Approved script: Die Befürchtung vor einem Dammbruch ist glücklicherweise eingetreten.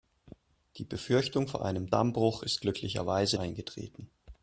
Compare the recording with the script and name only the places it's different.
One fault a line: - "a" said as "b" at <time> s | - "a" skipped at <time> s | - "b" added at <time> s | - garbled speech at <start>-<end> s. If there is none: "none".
none